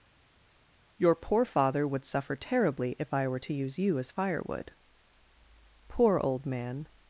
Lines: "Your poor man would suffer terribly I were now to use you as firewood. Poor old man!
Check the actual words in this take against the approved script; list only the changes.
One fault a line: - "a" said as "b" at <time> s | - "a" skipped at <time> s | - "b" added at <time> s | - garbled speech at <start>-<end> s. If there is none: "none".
- "man" said as "father" at 1.4 s
- "if" added at 3.0 s
- "now" skipped at 3.4 s